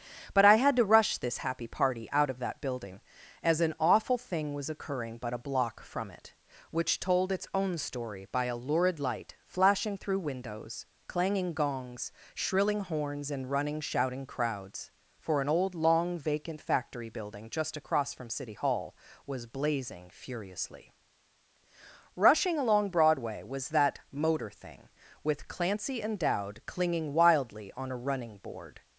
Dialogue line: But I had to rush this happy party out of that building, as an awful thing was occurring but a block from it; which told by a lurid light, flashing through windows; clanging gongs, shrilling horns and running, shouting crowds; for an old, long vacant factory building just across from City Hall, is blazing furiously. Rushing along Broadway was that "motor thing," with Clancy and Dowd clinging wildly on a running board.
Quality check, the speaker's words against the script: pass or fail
fail